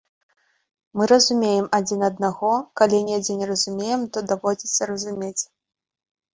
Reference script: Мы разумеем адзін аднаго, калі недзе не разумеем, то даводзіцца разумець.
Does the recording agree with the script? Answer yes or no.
yes